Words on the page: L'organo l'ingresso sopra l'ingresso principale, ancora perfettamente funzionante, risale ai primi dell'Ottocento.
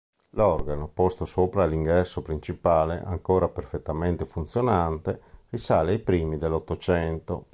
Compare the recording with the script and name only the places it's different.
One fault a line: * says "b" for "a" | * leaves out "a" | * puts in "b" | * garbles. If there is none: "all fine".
* says "posto" for "l'ingresso"